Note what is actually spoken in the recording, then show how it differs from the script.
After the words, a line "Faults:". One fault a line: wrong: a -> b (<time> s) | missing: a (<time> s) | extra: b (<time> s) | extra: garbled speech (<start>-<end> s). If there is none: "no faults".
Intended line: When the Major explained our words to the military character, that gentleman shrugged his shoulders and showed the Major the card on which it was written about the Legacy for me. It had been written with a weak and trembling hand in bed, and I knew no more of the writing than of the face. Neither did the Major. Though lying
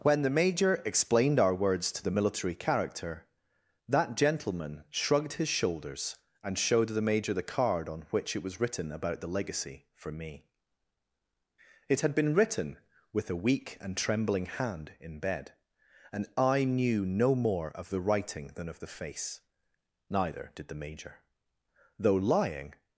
When the Major explained our words to the military character, that gentleman shrugged his shoulders and showed the Major the card on which it was written about the Legacy for me. It had been written with a weak and trembling hand in bed, and I knew no more of the writing than of the face. Neither did the Major. Though lying
Faults:
no faults